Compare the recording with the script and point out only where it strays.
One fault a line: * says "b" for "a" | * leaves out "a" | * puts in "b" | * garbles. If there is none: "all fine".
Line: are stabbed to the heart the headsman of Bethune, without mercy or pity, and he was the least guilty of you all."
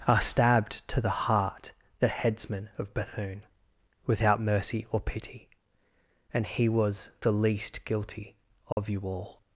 all fine